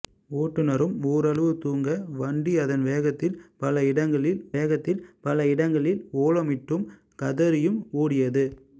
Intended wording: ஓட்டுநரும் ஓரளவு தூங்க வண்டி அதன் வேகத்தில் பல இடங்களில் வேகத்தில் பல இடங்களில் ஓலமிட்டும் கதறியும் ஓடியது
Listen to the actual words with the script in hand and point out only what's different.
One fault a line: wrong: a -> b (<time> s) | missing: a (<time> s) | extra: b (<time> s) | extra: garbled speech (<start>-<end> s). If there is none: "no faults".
no faults